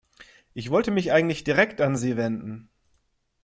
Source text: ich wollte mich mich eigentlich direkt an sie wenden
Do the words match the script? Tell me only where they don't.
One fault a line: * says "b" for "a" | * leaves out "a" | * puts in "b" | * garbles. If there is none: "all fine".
* leaves out "mich"